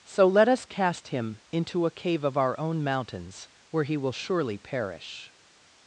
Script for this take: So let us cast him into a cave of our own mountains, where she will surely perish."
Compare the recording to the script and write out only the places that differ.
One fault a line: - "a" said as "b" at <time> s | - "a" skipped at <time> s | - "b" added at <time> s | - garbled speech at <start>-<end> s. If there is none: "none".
- "she" said as "he" at 3.8 s